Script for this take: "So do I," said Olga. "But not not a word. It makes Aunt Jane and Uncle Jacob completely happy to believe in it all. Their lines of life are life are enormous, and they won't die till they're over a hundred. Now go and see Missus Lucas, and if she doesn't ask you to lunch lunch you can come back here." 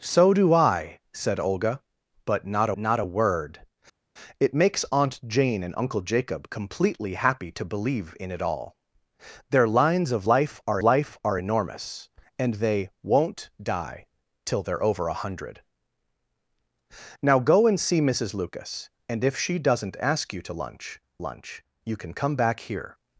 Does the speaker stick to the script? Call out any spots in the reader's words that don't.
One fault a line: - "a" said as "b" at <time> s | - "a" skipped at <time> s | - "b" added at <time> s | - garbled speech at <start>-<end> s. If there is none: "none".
none